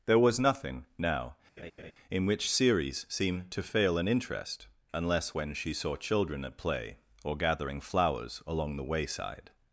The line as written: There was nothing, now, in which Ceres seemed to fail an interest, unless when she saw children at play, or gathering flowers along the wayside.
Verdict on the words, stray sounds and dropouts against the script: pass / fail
fail